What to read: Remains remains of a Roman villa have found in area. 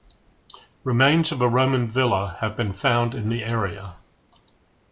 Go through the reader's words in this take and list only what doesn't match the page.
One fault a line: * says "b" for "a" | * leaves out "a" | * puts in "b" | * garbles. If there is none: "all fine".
* leaves out "remains"
* puts in "been"
* puts in "the"